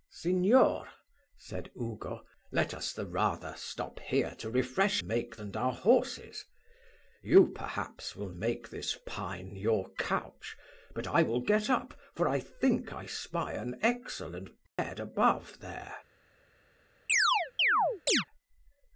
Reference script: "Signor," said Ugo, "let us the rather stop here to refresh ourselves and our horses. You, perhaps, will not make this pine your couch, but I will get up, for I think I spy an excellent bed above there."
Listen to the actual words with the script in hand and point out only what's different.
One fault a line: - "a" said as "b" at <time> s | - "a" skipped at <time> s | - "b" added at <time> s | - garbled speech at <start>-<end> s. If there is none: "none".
- "ourselves" said as "make" at 5.0 s
- "not" skipped at 8.3 s